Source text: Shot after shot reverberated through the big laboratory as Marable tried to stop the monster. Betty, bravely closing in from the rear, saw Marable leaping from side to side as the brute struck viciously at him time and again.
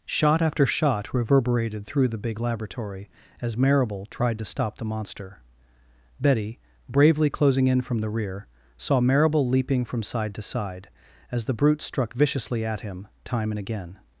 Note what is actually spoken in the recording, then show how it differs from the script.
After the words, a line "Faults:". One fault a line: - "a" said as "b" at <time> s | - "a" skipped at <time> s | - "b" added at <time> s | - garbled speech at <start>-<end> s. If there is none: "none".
Shot after shot reverberated through the big laboratory as Marable tried to stop the monster. Betty, bravely closing in from the rear, saw Marable leaping from side to side as the brute struck viciously at him time and again.
Faults:
none